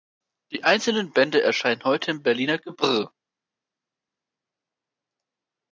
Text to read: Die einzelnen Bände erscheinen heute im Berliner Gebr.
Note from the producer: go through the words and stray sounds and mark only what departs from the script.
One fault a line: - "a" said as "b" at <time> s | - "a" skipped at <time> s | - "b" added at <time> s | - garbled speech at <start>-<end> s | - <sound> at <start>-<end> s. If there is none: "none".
none